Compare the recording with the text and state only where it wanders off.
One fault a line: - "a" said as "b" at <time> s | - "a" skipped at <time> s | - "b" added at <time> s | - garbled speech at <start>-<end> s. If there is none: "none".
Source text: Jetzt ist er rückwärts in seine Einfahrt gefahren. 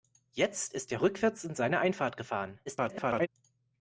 - garbled speech at 2.7-3.3 s